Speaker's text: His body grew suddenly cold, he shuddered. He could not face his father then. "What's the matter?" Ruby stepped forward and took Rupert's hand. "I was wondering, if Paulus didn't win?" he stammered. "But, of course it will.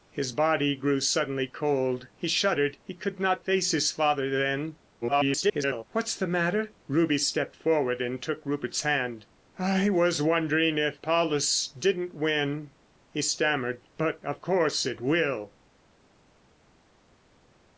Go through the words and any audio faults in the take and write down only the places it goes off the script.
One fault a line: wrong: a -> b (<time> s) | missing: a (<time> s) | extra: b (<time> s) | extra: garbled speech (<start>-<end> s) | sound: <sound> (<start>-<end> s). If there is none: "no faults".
extra: garbled speech (5.0-5.8 s)